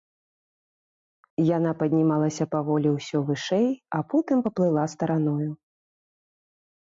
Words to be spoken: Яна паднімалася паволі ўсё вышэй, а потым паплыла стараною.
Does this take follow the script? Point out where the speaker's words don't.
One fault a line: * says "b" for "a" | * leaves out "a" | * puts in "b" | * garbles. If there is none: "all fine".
all fine